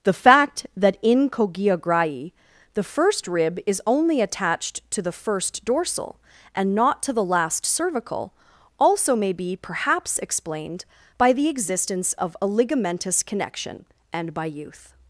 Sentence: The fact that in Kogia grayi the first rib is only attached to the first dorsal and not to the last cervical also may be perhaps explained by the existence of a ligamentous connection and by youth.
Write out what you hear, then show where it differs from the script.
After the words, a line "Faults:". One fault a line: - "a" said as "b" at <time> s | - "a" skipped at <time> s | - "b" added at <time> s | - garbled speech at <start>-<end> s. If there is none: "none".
The fact that in Kogia grayi the first rib is only attached to the first dorsal and not to the last cervical also may be perhaps explained by the existence of a ligamentous connection and by youth.
Faults:
none